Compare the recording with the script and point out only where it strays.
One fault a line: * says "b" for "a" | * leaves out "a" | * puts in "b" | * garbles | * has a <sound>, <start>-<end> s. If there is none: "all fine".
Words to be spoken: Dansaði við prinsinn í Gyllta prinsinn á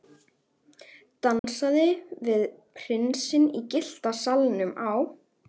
* has a dropout, 1.4-1.4 s
* says "salnum" for "prinsinn"